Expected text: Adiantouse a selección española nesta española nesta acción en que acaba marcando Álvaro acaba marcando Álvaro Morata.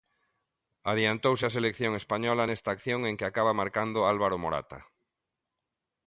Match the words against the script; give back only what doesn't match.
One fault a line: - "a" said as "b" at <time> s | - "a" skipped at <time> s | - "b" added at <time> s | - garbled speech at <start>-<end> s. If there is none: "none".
- "española nesta" skipped at 2.7 s
- "acaba marcando Álvaro" skipped at 4.4 s